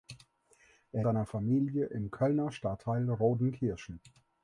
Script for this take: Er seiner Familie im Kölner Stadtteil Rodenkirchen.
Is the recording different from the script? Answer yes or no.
no